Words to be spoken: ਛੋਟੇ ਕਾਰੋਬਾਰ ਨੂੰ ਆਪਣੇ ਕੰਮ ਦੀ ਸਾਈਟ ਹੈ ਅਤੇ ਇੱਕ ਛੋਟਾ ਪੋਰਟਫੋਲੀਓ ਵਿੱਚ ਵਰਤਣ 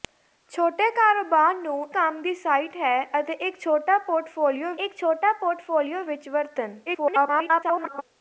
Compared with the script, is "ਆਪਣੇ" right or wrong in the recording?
wrong